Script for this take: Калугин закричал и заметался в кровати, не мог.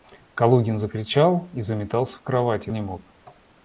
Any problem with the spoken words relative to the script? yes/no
no